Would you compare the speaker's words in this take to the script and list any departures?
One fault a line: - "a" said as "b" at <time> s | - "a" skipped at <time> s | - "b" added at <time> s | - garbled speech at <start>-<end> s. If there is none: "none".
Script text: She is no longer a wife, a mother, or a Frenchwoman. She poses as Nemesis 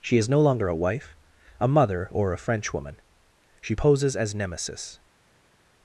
none